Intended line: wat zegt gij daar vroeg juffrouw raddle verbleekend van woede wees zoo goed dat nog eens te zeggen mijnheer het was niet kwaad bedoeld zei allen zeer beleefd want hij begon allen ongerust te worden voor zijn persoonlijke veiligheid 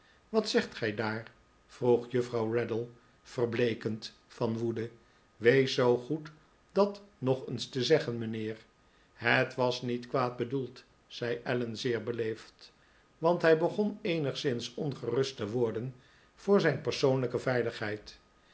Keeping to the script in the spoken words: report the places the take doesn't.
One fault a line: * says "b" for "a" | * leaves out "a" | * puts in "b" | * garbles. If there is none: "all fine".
* says "eenigszins" for "allen"